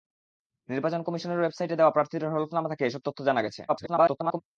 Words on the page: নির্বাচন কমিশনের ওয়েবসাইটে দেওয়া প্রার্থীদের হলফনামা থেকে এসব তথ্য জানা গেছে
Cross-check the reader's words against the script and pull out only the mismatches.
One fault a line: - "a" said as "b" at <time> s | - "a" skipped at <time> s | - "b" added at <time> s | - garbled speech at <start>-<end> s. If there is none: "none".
- garbled speech at 3.7-4.4 s